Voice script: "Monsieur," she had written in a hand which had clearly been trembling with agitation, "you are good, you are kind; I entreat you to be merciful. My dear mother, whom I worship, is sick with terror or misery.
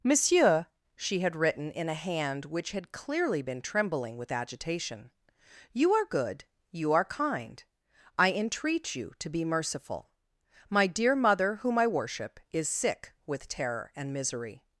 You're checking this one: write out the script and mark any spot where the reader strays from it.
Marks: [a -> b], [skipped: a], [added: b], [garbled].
"Monsieur," she had written in a hand which had clearly been trembling with agitation, "you are good, you are kind; I entreat you to be merciful. My dear mother, whom I worship, is sick with terror [or -> and] misery.